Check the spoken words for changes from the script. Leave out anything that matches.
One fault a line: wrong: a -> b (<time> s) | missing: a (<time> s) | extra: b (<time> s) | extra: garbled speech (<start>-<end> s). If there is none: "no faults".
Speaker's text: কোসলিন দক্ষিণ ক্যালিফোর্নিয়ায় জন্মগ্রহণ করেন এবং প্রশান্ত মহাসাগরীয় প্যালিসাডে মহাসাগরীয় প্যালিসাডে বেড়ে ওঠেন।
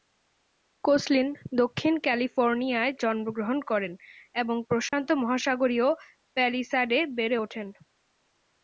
missing: মহাসাগরীয় প্যালিসাডে (7.0 s)